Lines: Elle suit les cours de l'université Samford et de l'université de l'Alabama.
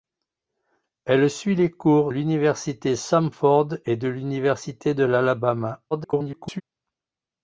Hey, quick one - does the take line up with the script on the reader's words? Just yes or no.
no